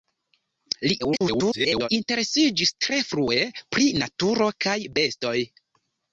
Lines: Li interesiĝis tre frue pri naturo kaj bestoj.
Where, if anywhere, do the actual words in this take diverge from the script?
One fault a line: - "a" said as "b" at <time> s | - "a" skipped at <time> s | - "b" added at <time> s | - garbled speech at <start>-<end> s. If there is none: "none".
- garbled speech at 1.0-1.9 s